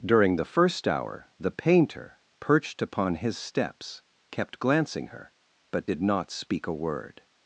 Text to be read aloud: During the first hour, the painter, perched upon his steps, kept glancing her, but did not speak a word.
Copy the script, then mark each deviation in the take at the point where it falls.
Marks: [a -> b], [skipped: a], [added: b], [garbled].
During the first hour, the painter, perched upon his steps, kept glancing her, but did not speak a word.